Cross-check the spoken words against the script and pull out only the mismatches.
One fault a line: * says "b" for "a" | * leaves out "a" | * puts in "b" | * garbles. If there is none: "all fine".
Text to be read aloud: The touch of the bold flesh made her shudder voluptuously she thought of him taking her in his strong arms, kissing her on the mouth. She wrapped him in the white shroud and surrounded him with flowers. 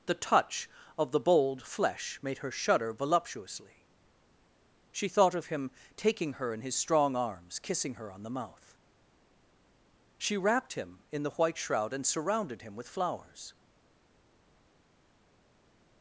all fine